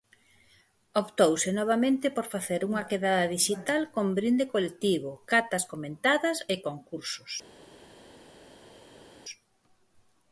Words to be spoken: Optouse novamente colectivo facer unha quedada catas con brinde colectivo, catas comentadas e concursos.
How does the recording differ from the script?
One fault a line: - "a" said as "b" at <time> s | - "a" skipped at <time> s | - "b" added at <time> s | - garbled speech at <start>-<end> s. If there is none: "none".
- "colectivo" said as "por" at 2.1 s
- "catas" said as "dixital" at 3.4 s